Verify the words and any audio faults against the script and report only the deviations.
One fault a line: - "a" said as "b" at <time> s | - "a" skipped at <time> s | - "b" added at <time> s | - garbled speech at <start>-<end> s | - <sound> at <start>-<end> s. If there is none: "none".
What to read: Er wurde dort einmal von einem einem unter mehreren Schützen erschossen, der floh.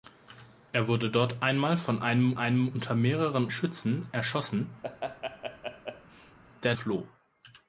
- laugh at 4.8-6.4 s